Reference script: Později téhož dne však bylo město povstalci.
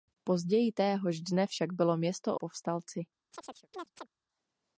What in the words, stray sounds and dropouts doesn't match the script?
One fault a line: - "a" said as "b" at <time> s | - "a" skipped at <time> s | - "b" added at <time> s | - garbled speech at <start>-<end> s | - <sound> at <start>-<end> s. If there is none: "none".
- chirp at 3.3-4.1 s